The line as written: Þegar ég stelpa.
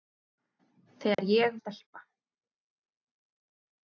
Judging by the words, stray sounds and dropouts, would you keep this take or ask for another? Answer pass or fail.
fail